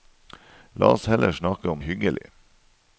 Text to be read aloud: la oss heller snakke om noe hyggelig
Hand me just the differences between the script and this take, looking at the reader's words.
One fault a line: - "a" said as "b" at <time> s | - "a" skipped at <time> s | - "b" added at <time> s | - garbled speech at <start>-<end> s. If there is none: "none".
- "noe" skipped at 1.8 s